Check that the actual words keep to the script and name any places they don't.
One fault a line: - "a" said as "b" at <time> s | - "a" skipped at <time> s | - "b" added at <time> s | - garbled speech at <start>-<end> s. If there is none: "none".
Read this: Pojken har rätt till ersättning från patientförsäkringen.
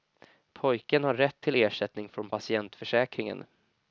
none